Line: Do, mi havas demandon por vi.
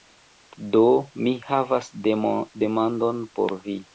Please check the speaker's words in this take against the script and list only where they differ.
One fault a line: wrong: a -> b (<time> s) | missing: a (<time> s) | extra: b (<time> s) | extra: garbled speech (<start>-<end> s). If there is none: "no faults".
no faults